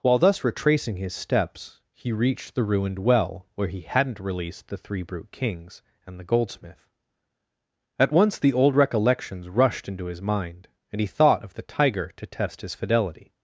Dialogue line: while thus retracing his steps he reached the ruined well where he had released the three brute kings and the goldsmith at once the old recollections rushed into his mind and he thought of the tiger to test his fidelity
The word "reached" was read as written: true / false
true